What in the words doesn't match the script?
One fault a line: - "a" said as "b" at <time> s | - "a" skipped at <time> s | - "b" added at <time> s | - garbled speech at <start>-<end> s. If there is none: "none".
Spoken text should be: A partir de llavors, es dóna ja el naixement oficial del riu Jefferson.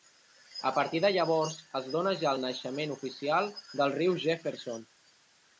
none